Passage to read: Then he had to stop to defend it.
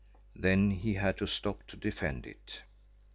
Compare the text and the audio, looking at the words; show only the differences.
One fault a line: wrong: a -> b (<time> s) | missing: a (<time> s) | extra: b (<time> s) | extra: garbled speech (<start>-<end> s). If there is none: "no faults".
no faults